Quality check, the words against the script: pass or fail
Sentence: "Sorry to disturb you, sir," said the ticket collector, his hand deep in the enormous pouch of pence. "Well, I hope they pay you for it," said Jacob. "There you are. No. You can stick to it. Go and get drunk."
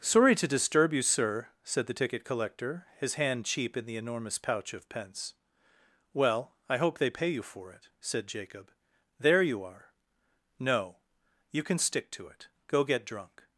fail